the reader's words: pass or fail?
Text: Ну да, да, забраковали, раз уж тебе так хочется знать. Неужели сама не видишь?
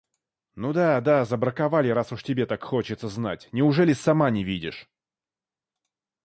pass